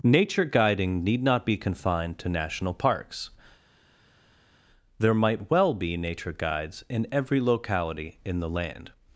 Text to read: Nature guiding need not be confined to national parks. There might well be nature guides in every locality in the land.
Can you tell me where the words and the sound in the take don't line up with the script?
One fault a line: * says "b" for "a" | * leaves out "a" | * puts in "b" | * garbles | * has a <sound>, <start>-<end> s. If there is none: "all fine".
all fine